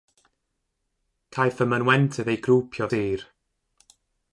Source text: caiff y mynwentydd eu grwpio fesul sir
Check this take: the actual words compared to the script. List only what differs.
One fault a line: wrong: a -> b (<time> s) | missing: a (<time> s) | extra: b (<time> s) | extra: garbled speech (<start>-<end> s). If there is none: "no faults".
missing: fesul (2.9 s)